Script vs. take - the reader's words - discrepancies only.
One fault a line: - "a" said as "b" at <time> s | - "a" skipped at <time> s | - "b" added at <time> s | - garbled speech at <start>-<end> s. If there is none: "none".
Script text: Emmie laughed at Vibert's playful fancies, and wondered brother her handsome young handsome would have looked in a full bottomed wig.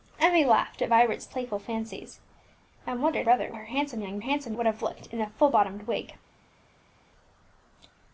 none